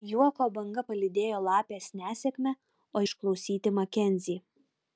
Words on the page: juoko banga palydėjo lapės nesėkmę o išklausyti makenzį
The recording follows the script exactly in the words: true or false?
true